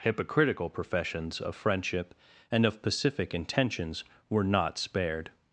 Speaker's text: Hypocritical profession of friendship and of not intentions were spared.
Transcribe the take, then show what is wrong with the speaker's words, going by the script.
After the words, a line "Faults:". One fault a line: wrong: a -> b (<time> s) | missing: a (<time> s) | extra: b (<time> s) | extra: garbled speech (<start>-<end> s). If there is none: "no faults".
Hypocritical professions of friendship and of pacific intentions were not spared.
Faults:
wrong: profession -> professions (0.7 s)
wrong: not -> pacific (2.8 s)
extra: not (4.4 s)